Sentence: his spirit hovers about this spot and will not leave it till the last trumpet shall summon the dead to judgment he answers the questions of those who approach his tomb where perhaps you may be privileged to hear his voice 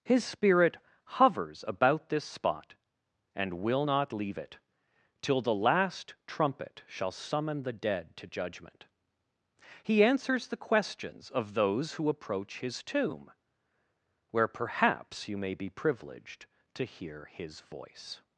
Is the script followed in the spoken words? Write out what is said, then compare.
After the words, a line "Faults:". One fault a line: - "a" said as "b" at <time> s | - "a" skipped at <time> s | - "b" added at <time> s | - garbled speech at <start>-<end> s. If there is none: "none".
his spirit hovers about this spot and will not leave it till the last trumpet shall summon the dead to judgment he answers the questions of those who approach his tomb where perhaps you may be privileged to hear his voice
Faults:
none